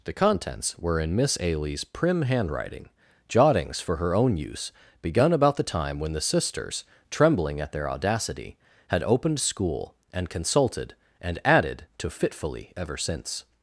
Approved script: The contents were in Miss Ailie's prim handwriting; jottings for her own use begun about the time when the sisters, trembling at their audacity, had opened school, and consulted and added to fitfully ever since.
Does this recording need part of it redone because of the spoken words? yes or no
no